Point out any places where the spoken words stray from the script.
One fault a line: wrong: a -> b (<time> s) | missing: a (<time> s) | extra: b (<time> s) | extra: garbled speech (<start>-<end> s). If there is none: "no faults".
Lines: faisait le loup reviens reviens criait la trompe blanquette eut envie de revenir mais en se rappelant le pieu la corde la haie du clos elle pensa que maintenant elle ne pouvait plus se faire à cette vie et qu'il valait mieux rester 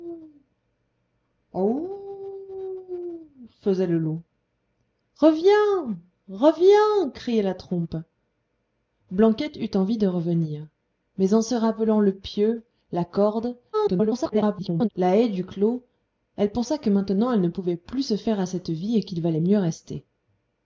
extra: garbled speech (13.7-14.9 s)